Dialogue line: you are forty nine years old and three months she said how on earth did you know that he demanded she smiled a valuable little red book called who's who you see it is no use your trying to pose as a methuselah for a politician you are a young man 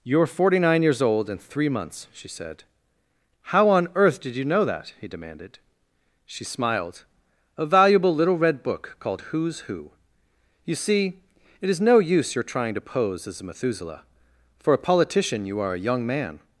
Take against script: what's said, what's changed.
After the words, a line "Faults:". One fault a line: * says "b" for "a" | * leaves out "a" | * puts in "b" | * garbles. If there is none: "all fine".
you are forty nine years old and three months she said how on earth did you know that he demanded she smiled a valuable little red book called who's who you see it is no use your trying to pose as a methuselah for a politician you are a young man
Faults:
all fine